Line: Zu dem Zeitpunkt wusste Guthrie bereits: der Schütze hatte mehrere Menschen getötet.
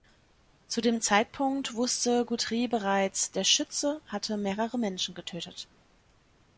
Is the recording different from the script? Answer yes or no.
no